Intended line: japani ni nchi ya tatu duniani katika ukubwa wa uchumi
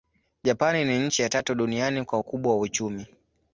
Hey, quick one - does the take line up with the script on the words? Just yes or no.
no